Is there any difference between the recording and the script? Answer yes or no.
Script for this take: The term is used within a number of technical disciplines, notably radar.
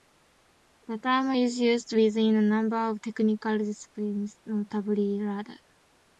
no